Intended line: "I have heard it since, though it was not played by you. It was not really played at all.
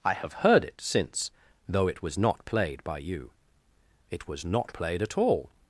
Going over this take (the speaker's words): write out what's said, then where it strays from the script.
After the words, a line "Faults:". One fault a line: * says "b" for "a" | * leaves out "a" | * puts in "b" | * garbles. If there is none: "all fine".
"I have heard it since, though it was not played by you. It was not played at all.
Faults:
* leaves out "really"